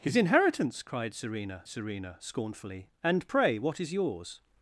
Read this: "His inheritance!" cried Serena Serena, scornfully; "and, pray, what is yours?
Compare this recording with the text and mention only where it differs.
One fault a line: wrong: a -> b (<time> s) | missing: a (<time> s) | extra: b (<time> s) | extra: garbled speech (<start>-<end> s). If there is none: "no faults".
no faults